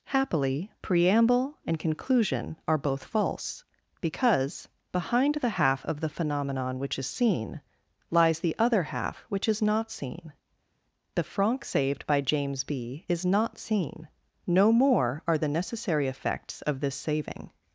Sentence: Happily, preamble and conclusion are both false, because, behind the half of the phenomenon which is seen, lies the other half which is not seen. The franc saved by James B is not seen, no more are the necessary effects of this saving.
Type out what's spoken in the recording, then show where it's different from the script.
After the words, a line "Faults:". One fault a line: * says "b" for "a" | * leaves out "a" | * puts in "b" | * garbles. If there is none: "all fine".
Happily, preamble and conclusion are both false, because, behind the half of the phenomenon which is seen, lies the other half which is not seen. The franc saved by James B is not seen, no more are the necessary effects of this saving.
Faults:
all fine